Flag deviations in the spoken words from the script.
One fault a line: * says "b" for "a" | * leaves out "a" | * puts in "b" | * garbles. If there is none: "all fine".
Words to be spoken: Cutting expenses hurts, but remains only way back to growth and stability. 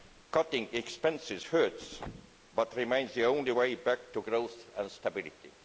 * puts in "the"